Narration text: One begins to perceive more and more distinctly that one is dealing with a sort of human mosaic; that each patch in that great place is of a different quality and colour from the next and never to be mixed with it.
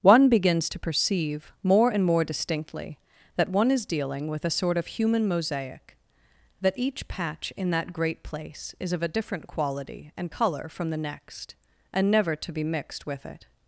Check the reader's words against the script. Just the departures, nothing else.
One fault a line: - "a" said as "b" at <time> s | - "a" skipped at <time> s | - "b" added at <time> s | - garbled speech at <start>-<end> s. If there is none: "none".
none